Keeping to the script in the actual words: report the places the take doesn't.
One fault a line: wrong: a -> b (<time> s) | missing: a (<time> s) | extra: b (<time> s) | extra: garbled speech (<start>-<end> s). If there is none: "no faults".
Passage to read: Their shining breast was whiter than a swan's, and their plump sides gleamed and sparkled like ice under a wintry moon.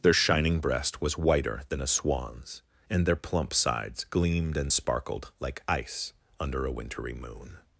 no faults